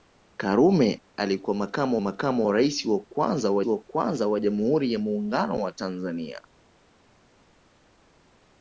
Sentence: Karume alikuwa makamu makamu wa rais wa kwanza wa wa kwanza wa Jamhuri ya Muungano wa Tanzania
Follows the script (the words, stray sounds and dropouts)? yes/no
yes